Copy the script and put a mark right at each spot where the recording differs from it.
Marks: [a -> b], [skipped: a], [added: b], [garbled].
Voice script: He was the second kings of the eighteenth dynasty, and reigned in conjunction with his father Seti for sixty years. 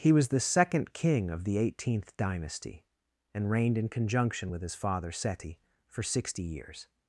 He was the second [kings -> king] of the eighteenth dynasty, and reigned in conjunction with his father Seti for sixty years.